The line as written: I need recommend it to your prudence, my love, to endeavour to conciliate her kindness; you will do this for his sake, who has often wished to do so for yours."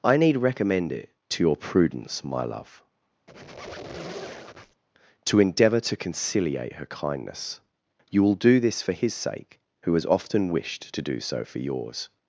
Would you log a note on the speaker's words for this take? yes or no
no